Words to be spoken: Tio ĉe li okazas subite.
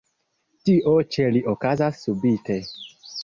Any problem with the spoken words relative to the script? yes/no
no